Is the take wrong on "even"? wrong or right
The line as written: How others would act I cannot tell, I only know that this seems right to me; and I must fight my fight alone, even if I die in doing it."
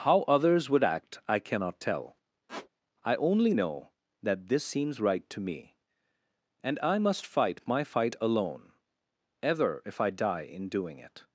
wrong